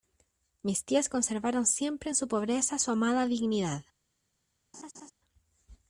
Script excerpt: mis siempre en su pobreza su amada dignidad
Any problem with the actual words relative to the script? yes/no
yes